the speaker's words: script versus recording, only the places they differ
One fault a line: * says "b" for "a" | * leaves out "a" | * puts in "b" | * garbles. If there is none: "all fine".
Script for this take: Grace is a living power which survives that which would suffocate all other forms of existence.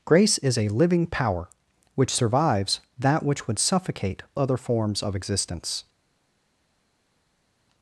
* leaves out "all"